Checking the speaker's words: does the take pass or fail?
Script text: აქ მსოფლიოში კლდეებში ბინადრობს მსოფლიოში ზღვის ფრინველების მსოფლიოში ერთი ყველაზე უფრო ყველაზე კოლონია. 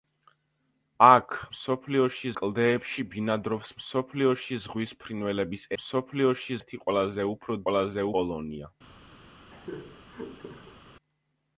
pass